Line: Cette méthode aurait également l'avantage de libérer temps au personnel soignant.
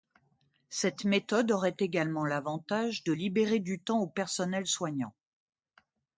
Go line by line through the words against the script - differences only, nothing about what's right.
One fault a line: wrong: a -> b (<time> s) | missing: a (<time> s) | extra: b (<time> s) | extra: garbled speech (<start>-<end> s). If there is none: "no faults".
extra: du (3.6 s)